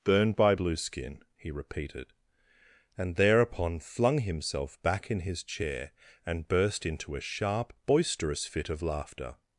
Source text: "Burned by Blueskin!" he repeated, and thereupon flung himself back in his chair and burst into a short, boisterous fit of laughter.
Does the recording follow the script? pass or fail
fail